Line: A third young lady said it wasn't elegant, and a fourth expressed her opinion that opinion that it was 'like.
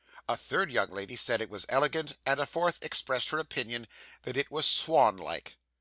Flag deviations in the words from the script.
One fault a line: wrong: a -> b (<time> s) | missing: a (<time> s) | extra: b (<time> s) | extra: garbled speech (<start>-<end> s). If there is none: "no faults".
wrong: wasn't -> was (1.5 s)
missing: opinion that (4.4 s)
extra: swan (4.6 s)